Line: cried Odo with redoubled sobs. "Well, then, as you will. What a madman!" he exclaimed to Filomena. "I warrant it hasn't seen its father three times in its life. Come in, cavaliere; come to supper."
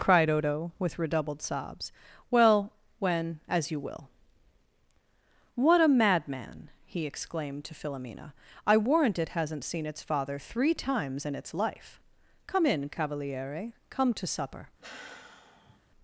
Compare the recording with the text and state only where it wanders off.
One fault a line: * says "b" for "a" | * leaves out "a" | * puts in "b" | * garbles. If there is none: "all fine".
* says "when" for "then"